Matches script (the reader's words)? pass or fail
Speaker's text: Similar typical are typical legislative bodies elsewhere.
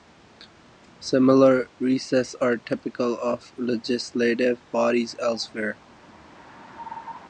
fail